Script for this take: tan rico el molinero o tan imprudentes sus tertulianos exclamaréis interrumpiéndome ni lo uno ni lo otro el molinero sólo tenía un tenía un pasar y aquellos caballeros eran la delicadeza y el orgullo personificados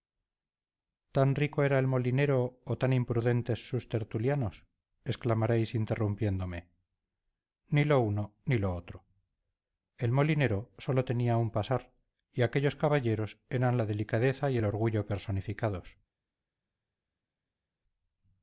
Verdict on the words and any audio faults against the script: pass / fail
fail